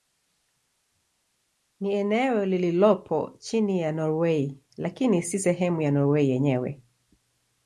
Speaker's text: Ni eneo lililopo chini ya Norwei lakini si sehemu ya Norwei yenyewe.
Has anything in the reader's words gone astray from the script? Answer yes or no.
no